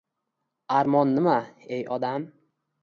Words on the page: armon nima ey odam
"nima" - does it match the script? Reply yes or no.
yes